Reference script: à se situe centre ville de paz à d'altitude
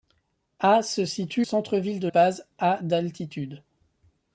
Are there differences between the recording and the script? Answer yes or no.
no